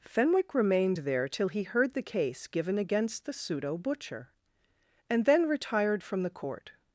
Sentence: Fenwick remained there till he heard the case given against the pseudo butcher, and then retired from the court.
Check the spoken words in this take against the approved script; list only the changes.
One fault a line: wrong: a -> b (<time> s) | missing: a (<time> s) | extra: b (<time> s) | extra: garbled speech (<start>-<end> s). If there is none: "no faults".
no faults